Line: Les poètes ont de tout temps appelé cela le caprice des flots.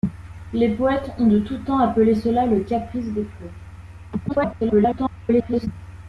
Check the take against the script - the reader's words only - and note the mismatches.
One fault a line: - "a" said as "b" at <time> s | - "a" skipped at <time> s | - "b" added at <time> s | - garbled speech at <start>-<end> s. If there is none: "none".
- garbled speech at 4.3-5.7 s